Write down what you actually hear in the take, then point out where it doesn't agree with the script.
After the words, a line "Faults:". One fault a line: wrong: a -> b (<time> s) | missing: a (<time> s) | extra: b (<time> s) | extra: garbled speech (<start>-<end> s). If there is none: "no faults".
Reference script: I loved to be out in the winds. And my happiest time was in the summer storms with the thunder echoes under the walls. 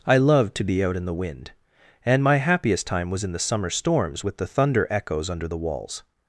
I loved to be out in the wind. And my happiest time was in the summer storms with the thunder echoes under the walls.
Faults:
wrong: winds -> wind (1.1 s)